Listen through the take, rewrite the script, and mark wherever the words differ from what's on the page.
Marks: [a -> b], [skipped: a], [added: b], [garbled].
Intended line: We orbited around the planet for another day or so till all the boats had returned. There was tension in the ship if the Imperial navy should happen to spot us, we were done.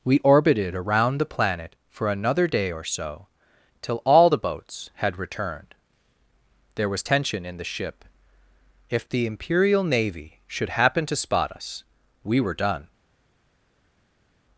We orbited around the planet for another day or so till all the boats had returned. There was tension in the ship if the Imperial navy should happen to spot us, we were done.